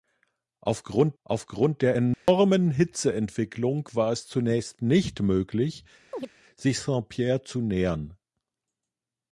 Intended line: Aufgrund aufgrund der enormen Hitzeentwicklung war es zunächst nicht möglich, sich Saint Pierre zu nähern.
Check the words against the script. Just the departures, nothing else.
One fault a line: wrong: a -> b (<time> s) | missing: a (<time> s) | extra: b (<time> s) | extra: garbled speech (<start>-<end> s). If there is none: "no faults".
no faults